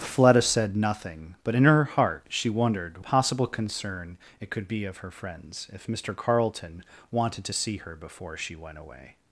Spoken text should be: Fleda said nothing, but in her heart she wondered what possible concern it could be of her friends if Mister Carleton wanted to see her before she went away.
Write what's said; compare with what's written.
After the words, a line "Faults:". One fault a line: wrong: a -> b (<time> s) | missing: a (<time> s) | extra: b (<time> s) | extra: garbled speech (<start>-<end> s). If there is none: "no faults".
Fleda said nothing, but in her heart she wondered possible concern it could be of her friends if Mister Carleton wanted to see her before she went away.
Faults:
missing: what (3.0 s)